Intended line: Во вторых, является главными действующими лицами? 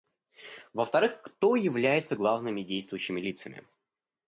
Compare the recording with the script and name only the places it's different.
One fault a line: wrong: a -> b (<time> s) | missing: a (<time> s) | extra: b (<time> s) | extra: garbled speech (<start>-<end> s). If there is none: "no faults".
extra: кто (1.2 s)